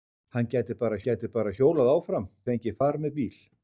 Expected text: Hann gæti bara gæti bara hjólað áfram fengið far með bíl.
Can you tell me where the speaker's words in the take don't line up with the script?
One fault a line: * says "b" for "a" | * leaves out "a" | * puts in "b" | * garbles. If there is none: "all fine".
all fine